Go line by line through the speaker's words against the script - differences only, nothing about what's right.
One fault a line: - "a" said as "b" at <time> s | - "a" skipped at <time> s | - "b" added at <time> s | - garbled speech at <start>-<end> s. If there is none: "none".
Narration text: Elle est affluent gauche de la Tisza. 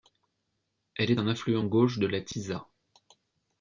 - "un" added at 1.2 s